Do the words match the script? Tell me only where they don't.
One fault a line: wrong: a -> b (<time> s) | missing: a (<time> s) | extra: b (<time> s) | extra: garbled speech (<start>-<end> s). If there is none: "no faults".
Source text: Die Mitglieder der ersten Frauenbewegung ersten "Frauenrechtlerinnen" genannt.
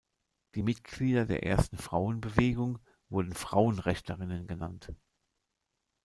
wrong: ersten -> wurden (3.1 s)